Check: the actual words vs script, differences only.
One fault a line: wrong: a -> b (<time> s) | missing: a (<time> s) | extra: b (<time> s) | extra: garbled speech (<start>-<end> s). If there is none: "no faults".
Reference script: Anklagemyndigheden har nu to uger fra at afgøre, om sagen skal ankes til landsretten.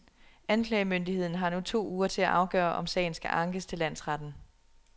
wrong: fra -> til (2.1 s)